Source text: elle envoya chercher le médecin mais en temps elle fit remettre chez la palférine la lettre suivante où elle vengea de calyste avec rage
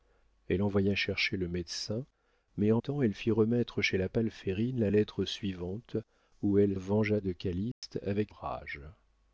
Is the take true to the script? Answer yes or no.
yes